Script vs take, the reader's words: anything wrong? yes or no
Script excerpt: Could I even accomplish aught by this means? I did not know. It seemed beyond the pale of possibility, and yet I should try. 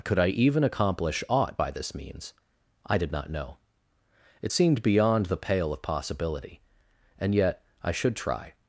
no